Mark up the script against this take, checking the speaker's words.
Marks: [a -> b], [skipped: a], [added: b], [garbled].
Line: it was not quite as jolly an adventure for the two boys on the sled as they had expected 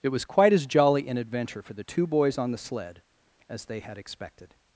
it was [skipped: not] quite as jolly an adventure for the two boys on the sled as they had expected